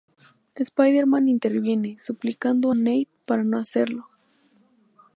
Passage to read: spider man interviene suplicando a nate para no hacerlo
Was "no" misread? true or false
false